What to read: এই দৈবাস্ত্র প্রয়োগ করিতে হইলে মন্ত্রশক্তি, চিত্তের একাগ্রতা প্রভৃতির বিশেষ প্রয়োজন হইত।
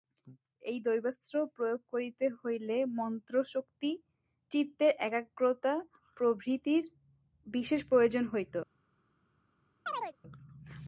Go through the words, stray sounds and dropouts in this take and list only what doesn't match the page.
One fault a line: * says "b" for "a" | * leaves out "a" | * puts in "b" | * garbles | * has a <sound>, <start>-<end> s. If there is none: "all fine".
* has a chirp, 9.9-10.2 s